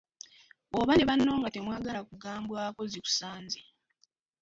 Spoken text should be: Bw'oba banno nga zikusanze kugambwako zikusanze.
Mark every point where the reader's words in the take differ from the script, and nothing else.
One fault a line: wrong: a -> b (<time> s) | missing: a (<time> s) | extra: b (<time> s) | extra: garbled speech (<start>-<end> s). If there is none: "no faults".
extra: ne (0.9 s)
wrong: zikusanze -> temwagala (1.5 s)